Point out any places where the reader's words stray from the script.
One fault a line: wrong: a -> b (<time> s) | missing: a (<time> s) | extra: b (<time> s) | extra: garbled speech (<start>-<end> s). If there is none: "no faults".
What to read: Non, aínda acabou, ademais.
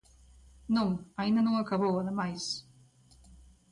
extra: non (1.4 s)